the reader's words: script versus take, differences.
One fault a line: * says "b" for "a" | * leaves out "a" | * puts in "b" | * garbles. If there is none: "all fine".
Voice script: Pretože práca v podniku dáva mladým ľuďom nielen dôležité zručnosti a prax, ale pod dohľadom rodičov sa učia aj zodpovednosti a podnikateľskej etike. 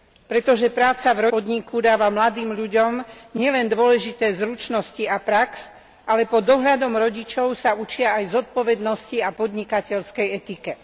all fine